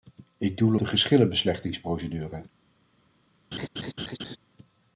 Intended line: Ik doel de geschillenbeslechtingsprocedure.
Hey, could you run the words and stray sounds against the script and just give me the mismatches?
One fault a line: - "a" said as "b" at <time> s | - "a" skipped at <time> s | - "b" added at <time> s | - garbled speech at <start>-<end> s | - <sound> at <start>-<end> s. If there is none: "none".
- laugh at 3.5-4.4 s